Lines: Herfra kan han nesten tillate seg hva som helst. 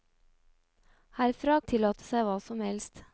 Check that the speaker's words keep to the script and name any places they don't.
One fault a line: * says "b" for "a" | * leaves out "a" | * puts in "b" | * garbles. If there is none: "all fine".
* leaves out "kan han nesten"